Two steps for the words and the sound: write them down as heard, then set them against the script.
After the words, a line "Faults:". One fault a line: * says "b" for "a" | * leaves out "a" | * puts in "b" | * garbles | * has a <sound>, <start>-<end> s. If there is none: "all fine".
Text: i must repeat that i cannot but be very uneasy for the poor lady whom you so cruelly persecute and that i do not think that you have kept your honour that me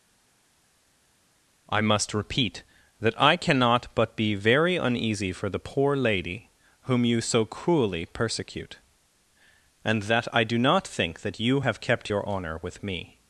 i must repeat that i cannot but be very uneasy for the poor lady whom you so cruelly persecute and that i do not think that you have kept your honour with me
Faults:
* says "with" for "that"